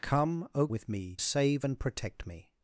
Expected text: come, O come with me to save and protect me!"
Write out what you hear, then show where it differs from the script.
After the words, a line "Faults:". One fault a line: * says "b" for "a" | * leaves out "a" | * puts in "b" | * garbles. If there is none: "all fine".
come, O with me save and protect me!"
Faults:
* leaves out "come"
* leaves out "to"